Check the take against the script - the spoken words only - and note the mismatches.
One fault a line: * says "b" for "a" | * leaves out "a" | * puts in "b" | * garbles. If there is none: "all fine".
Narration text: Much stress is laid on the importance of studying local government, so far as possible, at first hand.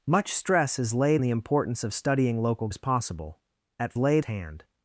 * leaves out "on"
* leaves out "government so far"
* says "laid" for "first"